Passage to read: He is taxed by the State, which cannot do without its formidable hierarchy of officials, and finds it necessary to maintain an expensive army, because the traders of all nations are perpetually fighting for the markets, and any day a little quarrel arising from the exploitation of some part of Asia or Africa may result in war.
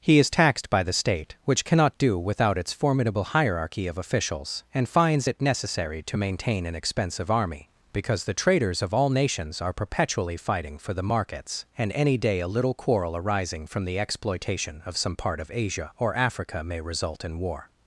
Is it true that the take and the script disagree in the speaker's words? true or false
false